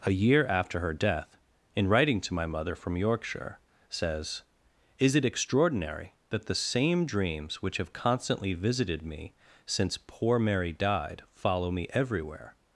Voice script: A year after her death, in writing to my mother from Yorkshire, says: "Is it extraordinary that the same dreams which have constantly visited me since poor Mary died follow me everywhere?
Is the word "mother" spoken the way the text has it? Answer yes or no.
yes